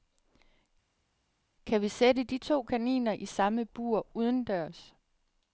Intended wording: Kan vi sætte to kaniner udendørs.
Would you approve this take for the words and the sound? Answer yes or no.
no